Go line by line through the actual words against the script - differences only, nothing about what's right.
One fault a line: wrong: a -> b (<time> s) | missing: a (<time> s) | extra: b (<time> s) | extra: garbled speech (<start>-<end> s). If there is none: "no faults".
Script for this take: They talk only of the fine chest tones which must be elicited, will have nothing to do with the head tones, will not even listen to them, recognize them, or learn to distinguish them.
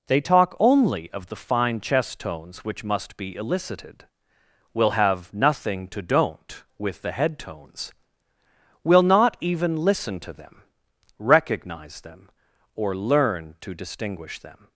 wrong: do -> don't (6.0 s)